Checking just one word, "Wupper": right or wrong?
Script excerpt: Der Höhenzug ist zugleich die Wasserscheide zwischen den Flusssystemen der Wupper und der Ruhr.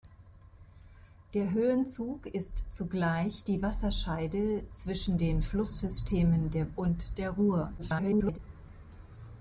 wrong